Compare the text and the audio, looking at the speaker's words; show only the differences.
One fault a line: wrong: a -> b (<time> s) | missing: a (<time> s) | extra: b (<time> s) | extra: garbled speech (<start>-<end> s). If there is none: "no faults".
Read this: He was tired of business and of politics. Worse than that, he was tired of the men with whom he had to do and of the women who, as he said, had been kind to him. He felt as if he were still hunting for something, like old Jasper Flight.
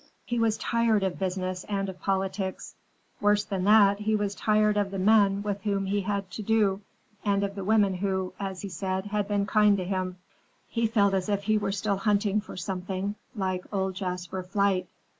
no faults